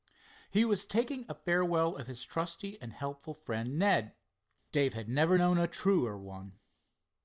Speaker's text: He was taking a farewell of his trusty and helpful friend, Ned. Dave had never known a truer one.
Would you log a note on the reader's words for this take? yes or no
no